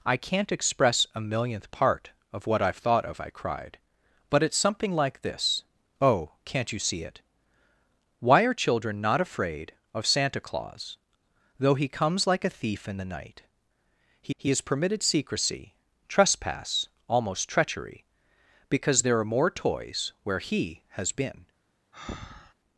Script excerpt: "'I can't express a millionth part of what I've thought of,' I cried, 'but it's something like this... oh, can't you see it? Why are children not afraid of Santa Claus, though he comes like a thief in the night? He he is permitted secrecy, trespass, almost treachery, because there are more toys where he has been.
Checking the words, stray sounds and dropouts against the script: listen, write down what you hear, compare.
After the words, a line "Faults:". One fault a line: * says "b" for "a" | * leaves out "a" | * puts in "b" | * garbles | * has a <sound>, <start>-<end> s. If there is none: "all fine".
"'I can't express a millionth part of what I've thought of,' I cried, 'but it's something like this... oh, can't you see it? Why are children not afraid of Santa Claus, though he comes like a thief in the night? He he is permitted secrecy, trespass, almost treachery, because there are more toys where he has been.
Faults:
* has a breath, 21.9-22.5 s